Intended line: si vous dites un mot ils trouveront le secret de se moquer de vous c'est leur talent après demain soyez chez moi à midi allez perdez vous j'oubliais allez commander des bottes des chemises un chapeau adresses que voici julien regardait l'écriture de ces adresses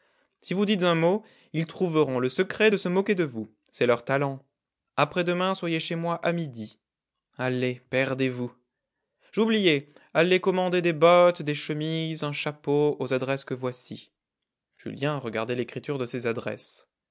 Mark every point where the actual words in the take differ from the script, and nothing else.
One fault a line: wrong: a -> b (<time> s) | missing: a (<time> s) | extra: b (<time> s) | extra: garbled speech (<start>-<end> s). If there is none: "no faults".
extra: aux (13.0 s)